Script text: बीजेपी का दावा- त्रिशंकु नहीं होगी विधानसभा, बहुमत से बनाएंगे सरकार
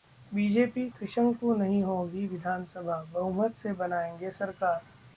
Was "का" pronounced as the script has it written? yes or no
no